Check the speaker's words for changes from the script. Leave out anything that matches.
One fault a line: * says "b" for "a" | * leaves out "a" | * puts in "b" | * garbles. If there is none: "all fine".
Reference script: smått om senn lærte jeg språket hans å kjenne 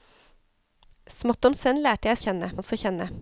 * says "kjenne" for "språket"